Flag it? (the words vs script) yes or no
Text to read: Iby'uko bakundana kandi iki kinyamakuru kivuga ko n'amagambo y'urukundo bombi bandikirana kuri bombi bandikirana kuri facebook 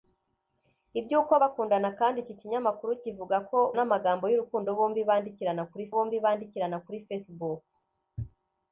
no